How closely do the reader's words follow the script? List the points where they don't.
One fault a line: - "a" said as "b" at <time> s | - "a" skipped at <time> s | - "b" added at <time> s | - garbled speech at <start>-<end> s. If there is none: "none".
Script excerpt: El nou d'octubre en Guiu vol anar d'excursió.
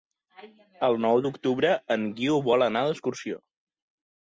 none